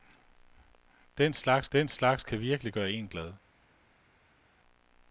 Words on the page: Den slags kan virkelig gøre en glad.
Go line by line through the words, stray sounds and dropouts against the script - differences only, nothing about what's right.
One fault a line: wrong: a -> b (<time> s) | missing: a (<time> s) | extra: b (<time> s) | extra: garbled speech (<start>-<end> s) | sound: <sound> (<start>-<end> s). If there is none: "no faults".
extra: den slags (1.7 s)